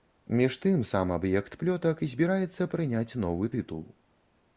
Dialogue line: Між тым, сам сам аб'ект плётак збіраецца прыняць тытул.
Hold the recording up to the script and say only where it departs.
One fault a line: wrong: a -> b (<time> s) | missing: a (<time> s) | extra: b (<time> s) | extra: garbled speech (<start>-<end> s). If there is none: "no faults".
missing: сам (1.1 s)
extra: новы (3.2 s)